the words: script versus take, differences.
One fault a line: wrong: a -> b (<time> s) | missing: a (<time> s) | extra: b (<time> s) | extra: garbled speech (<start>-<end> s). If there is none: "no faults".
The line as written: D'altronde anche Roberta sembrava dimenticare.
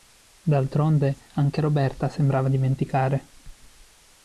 no faults